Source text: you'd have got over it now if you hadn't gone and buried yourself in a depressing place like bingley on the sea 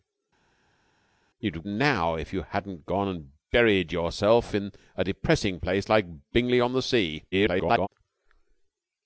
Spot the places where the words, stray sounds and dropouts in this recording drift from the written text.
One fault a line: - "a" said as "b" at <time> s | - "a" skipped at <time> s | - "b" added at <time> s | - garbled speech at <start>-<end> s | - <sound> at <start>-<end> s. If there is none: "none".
- "got over it" skipped at 1.6 s
- garbled speech at 7.3-7.9 s